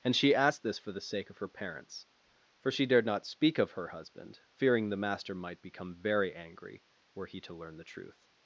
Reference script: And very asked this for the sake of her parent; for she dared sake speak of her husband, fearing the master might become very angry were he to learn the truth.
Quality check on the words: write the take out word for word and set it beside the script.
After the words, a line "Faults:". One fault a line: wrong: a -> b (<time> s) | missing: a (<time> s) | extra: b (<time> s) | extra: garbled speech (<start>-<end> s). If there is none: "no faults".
And she asked this for the sake of her parents; for she dared not speak of her husband, fearing the master might become very angry were he to learn the truth.
Faults:
wrong: very -> she (0.1 s)
wrong: parent -> parents (1.5 s)
wrong: sake -> not (3.0 s)